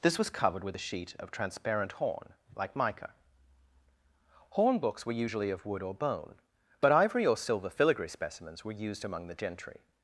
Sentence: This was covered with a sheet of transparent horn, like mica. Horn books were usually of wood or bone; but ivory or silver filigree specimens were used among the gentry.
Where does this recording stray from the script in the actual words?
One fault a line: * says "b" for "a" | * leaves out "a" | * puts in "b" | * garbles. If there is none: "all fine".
all fine